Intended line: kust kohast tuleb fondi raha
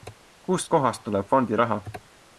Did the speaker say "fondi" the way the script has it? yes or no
yes